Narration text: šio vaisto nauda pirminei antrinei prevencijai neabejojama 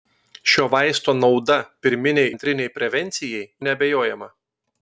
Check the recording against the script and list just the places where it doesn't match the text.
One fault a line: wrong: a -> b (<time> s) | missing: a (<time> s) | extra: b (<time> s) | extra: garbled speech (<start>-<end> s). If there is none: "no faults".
no faults